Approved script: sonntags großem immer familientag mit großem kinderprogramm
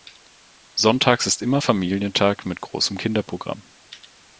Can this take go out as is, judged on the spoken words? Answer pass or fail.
fail